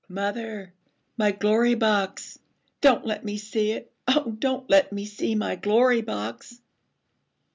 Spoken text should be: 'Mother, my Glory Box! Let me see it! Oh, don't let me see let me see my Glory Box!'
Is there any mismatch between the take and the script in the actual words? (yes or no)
yes